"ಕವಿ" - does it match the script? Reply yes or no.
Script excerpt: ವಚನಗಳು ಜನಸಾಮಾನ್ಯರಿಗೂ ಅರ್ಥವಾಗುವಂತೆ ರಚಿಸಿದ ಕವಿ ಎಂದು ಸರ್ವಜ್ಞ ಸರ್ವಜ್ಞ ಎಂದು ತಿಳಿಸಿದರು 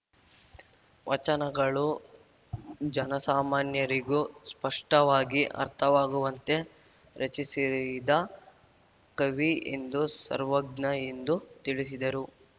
yes